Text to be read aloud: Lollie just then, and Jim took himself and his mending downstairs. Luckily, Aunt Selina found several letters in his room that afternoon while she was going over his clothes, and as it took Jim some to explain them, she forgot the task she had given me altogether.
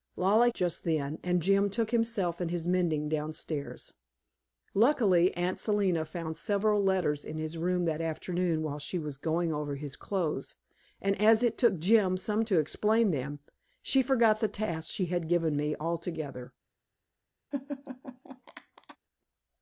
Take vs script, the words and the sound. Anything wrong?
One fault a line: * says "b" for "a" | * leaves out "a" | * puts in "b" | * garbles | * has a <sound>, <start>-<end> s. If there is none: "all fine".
* has a laugh, 17.5-19.0 s